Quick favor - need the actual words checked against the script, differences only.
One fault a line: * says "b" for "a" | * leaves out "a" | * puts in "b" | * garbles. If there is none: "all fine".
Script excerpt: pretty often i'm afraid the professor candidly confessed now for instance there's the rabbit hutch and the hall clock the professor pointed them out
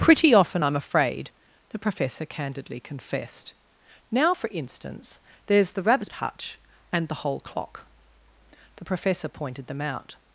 * says "whole" for "hall"